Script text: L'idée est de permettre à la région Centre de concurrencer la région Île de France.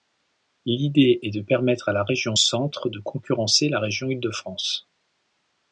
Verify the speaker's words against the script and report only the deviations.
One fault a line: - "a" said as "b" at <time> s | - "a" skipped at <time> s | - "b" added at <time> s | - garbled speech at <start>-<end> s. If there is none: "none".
none